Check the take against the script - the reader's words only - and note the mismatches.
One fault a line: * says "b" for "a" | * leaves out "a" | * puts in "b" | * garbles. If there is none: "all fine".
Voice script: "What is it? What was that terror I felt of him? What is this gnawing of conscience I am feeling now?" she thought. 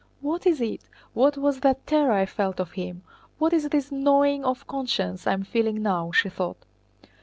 all fine